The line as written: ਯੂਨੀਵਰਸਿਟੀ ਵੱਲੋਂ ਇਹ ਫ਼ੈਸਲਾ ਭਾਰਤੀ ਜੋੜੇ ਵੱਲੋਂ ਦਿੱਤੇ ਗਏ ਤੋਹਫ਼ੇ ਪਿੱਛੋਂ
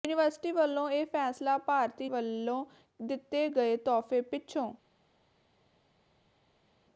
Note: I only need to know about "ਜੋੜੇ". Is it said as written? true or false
false